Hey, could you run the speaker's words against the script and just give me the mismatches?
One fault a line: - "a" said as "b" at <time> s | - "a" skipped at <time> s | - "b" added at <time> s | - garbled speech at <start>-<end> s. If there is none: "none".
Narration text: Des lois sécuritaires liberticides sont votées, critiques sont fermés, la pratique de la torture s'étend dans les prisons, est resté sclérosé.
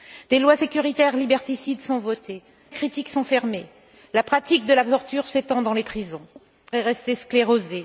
none